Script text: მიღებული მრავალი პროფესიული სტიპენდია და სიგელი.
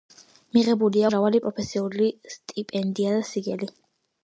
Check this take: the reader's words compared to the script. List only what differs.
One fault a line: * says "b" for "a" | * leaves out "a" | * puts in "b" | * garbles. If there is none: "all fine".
all fine